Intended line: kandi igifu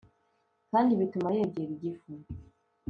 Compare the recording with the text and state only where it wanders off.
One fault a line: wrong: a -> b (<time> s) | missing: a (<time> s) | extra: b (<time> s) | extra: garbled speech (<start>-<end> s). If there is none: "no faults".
extra: bituma yegera (1.0 s)